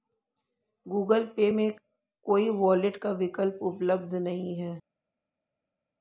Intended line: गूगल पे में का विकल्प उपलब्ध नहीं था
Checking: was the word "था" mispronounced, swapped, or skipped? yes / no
yes